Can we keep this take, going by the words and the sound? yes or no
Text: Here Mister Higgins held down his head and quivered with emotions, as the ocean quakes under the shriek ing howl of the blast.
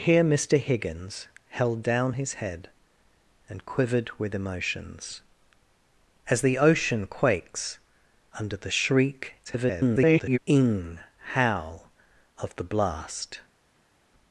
no